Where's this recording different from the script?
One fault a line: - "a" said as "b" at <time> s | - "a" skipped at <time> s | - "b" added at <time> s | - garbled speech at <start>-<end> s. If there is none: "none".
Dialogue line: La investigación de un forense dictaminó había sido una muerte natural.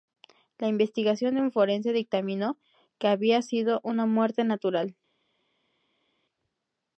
- "que" added at 3.0 s